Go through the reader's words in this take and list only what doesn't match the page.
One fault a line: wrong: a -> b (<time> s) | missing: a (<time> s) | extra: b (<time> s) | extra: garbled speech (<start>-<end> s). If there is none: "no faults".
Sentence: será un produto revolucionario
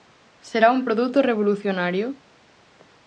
no faults